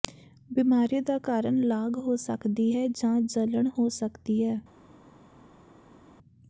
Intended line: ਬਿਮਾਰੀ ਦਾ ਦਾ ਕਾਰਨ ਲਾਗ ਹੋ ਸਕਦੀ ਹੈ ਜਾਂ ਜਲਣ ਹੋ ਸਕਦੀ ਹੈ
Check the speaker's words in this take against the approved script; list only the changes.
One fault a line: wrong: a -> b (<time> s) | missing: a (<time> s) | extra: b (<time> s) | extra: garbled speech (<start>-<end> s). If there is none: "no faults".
missing: ਦਾ (1.2 s)